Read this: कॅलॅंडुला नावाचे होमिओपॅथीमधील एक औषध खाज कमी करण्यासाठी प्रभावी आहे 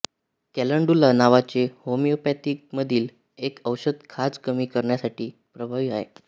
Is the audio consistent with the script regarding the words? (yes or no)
yes